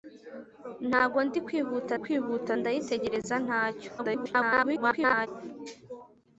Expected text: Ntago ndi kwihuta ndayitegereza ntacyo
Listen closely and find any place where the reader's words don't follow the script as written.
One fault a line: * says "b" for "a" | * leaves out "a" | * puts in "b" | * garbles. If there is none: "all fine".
* puts in "kwihuta"
* garbles